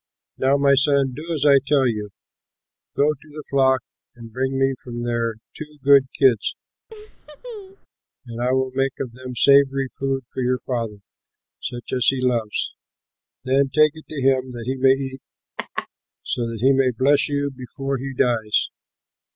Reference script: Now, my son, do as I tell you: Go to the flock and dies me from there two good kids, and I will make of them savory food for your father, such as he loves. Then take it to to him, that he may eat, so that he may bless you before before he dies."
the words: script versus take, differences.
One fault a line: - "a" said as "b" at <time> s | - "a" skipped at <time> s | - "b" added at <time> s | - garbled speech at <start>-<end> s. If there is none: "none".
- "dies" said as "bring" at 4.3 s
- "to" skipped at 14.2 s
- "before" skipped at 18.0 s